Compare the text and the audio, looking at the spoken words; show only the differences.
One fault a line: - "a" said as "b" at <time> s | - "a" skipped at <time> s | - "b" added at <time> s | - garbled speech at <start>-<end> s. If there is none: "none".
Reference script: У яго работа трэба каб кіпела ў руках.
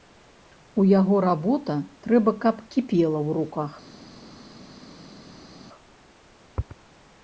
none